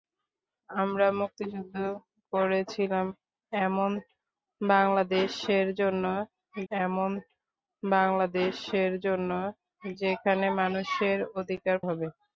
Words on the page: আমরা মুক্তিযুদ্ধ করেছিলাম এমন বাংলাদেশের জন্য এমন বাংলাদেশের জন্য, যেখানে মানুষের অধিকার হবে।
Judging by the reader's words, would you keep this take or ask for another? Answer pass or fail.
pass